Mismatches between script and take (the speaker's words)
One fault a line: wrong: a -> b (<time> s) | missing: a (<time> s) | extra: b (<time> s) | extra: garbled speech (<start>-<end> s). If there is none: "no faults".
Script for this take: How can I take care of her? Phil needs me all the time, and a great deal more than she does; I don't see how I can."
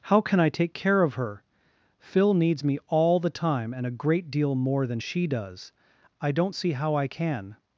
no faults